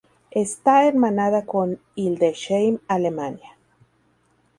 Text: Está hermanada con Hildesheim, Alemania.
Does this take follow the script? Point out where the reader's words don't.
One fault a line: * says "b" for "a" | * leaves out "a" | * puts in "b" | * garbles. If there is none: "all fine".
all fine